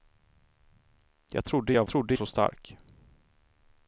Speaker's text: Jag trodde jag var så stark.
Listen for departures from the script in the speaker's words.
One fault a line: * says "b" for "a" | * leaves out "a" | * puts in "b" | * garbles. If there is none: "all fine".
* says "trodde" for "var"